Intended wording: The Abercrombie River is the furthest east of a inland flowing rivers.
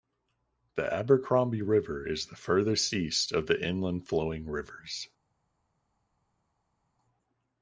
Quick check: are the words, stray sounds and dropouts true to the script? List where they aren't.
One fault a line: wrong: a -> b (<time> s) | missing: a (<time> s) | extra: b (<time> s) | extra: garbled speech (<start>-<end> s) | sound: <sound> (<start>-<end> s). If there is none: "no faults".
wrong: a -> the (3.5 s)